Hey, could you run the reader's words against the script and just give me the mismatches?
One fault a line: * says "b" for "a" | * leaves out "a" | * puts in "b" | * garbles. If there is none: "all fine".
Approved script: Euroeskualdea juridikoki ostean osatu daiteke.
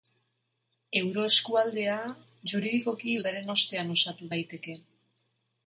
* puts in "udaren"